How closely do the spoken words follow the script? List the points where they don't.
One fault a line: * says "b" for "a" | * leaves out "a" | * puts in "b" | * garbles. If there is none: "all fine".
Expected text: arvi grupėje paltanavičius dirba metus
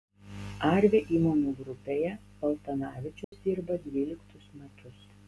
* puts in "įmonių"
* puts in "dvyliktus"